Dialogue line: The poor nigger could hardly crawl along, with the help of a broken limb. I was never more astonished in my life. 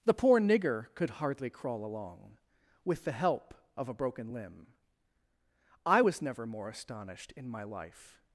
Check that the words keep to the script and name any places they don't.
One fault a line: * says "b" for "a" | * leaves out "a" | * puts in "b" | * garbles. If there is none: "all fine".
all fine